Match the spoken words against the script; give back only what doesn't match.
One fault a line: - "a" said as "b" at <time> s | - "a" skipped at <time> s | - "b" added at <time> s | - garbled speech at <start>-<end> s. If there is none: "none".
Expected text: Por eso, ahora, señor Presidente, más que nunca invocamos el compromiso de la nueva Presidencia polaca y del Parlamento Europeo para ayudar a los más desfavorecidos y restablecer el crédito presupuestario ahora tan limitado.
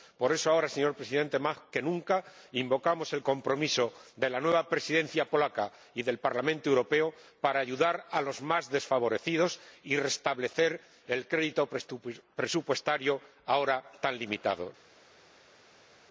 none